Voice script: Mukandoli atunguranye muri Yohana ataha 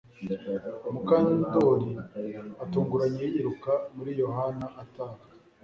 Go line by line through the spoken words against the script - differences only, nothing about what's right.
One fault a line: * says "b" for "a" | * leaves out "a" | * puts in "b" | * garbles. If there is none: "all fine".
* puts in "yiruka"